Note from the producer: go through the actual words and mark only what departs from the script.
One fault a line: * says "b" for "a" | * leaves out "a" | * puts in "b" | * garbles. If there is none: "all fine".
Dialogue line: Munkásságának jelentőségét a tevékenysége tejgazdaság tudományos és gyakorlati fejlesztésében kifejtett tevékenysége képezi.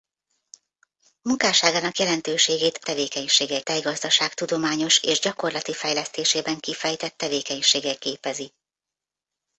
all fine